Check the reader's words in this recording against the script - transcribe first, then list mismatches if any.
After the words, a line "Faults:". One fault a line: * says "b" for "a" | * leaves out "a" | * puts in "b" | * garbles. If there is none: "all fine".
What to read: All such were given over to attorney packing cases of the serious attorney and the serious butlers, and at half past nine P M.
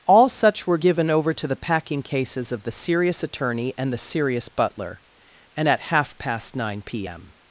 All such were given over to the packing cases of the serious attorney and the serious butler, and at half past nine P M.
Faults:
* says "the" for "attorney"
* says "butler" for "butlers"